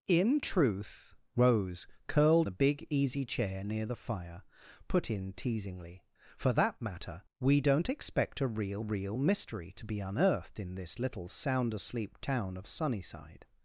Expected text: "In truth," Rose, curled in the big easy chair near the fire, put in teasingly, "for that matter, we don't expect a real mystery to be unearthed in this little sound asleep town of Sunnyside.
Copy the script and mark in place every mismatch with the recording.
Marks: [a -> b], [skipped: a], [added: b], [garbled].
"In truth," Rose, curled [skipped: in] the big easy chair near the fire, put in teasingly, "for that matter, we don't expect a real [added: real] mystery to be unearthed in this little sound asleep town of Sunnyside.